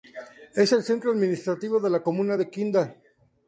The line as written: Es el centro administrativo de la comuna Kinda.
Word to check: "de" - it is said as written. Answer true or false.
true